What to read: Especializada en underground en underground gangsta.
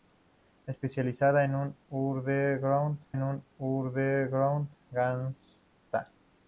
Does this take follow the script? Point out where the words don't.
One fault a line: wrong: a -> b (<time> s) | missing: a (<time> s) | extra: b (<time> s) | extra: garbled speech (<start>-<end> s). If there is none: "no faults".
no faults